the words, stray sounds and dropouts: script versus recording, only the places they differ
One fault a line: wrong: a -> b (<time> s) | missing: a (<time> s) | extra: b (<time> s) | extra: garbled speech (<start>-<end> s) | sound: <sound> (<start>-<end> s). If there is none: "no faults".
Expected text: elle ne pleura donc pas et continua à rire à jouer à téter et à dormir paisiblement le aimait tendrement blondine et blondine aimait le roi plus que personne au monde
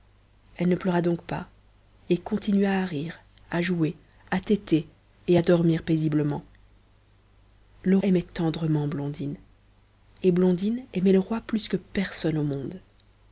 no faults